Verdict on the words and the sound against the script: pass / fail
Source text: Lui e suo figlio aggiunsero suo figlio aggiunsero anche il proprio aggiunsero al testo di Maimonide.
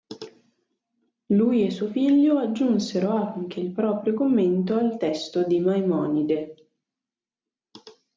fail